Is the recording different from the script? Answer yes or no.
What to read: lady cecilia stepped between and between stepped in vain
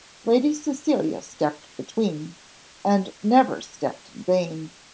yes